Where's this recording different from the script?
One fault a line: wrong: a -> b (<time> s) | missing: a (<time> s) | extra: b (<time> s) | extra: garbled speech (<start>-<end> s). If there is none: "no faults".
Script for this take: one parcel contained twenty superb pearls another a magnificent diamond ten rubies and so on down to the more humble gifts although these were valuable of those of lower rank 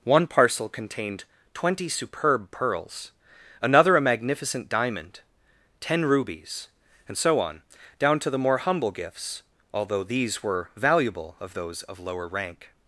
no faults